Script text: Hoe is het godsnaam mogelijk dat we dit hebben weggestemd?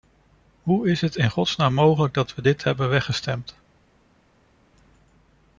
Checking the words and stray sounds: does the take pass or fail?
fail